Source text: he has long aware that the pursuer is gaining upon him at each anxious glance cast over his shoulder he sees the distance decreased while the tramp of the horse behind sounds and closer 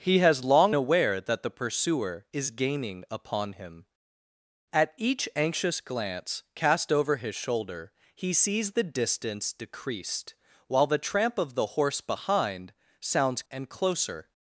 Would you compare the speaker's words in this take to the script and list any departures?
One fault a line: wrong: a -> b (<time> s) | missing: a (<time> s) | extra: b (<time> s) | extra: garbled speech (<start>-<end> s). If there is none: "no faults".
no faults